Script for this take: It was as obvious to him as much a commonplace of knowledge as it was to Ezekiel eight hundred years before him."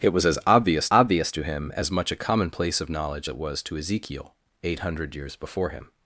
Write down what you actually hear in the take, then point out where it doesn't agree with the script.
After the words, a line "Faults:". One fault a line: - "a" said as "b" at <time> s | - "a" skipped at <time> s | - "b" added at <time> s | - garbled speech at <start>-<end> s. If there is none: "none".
It was as obvious obvious to him as much a commonplace of knowledge it was to Ezekiel eight hundred years before him."
Faults:
- "obvious" added at 0.9 s
- "as" skipped at 3.3 s